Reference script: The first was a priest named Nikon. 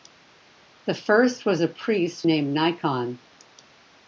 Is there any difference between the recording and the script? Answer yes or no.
no